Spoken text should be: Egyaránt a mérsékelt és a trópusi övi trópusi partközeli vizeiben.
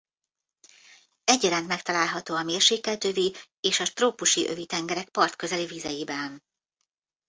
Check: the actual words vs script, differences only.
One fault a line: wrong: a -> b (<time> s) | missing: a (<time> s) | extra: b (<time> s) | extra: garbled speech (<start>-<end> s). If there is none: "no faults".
extra: megtalálható (1.7 s)
extra: övi (3.0 s)
wrong: trópusi -> tengerek (4.7 s)